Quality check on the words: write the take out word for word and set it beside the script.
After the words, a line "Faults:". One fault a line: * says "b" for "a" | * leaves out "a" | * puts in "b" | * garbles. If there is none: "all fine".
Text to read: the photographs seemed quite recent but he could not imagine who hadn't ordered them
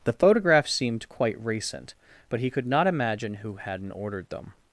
the photographs seemed quite recent but he could not imagine who hadn't ordered them
Faults:
all fine